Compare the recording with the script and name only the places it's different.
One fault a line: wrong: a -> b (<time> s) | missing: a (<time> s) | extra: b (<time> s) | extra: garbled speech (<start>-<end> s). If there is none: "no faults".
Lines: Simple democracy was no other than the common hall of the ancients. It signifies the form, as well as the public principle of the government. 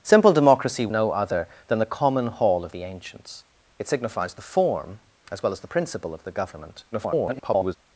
missing: was (0.9 s)
missing: public (5.7 s)
extra: garbled speech (6.9-7.8 s)